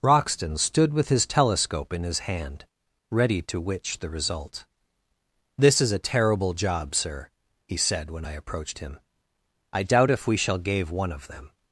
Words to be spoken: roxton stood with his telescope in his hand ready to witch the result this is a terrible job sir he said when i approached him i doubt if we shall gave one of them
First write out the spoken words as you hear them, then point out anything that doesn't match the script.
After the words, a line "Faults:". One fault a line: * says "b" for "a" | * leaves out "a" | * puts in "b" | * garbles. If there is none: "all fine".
roxton stood with his telescope in his hand ready to witch the result this is a terrible job sir he said when i approached him i doubt if we shall gave one of them
Faults:
all fine